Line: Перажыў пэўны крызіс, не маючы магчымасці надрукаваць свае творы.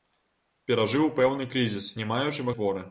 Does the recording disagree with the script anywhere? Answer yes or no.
yes